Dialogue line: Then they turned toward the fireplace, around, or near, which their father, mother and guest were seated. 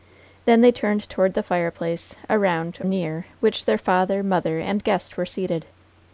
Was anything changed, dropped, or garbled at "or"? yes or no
yes